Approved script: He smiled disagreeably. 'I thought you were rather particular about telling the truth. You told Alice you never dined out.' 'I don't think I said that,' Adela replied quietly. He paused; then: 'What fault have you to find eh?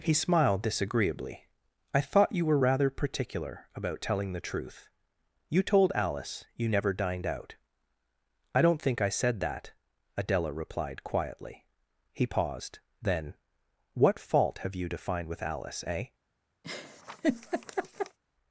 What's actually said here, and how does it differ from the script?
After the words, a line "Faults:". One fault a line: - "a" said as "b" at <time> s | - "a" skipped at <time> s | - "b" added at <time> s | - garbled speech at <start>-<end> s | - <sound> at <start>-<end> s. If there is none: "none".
He smiled disagreeably. 'I thought you were rather particular about telling the truth. You told Alice you never dined out.' 'I don't think I said that,' Adela replied quietly. He paused; then: 'What fault have you to find with Alice, eh?
Faults:
- "with Alice" added at 15.3 s
- laugh at 16.6-18.2 s